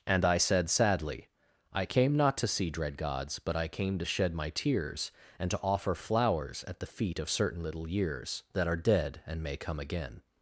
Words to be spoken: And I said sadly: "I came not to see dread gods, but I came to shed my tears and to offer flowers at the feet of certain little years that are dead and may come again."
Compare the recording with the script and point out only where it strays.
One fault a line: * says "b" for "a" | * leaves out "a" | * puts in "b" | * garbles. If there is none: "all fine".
all fine